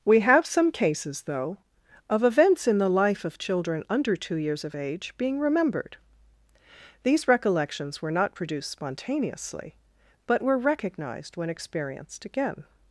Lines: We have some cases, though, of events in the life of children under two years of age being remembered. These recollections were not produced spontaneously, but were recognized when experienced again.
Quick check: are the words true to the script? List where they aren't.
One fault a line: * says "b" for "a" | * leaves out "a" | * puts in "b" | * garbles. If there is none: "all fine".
all fine